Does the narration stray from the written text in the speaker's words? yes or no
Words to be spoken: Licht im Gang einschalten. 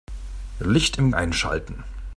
yes